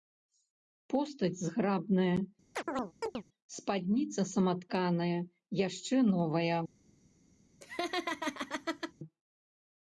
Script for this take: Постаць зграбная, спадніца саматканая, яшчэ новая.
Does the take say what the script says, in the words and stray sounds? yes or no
no